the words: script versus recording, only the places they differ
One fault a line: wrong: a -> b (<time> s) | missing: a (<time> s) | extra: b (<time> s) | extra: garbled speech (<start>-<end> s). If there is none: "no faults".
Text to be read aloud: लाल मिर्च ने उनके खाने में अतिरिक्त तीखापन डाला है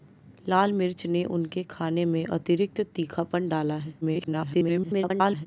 extra: garbled speech (4.0-5.5 s)